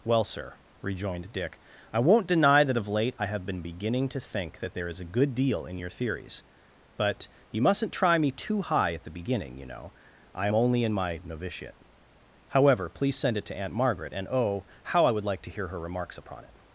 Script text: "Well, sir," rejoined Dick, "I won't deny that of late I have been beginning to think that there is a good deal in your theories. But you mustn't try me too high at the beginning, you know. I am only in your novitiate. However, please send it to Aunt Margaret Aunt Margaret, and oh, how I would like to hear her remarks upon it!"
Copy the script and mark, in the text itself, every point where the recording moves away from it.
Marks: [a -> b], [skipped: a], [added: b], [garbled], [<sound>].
"Well, sir," rejoined Dick, "I won't deny that of late I have been beginning to think that there is a good deal in your theories. But you mustn't try me too high at the beginning, you know. I am only in [your -> my] novitiate. However, please send it to Aunt Margaret [skipped: Aunt Margaret,] and oh, how I would like to hear her remarks upon it!"